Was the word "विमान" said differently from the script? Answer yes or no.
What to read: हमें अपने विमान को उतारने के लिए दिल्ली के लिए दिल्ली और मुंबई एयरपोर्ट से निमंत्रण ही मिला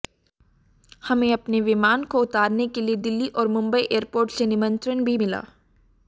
no